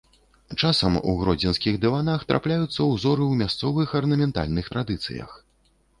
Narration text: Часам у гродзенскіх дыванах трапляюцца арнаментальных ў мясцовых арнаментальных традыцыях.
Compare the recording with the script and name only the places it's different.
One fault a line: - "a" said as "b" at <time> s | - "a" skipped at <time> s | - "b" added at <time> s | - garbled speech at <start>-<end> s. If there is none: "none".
- "арнаментальных" said as "ўзоры" at 2.9 s